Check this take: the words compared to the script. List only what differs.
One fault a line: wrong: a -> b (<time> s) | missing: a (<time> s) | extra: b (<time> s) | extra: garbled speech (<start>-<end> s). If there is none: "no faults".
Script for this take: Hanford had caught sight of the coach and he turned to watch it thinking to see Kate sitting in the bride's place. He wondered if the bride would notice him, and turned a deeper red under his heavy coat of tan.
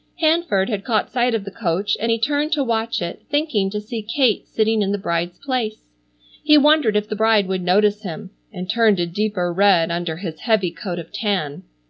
no faults